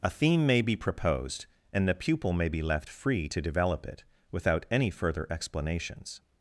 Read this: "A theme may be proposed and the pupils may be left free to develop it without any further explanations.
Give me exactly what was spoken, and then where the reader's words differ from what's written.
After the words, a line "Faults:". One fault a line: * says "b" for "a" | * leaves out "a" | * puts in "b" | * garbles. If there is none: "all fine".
"A theme may be proposed and the pupil may be left free to develop it without any further explanations.
Faults:
* says "pupil" for "pupils"